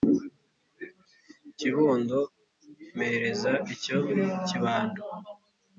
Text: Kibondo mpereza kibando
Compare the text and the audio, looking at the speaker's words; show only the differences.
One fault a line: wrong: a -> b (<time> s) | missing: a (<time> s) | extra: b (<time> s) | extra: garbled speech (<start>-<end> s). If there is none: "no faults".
extra: icyo (3.7 s)